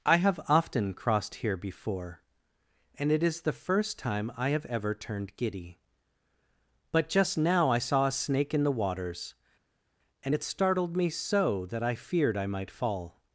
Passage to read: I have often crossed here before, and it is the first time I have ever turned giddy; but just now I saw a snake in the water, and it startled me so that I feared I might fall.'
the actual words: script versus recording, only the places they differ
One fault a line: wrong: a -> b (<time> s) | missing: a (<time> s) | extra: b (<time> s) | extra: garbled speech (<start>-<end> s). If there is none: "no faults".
wrong: water -> waters (8.7 s)